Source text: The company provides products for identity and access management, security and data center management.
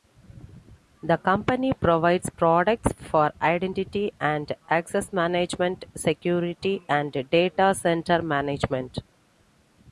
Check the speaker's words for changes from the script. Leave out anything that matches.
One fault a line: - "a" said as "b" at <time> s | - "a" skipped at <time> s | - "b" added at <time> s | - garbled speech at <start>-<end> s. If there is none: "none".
none